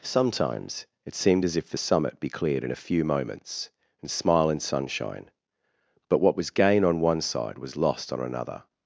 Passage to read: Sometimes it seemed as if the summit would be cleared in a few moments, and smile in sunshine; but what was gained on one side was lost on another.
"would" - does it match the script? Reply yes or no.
no